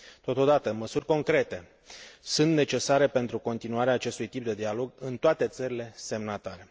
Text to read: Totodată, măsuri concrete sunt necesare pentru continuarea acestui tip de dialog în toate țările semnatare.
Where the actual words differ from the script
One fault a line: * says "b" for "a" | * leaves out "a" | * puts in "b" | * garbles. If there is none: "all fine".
all fine